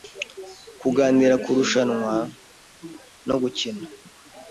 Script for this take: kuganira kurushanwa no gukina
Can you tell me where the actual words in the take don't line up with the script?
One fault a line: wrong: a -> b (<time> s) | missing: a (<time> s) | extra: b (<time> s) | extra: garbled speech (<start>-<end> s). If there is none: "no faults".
no faults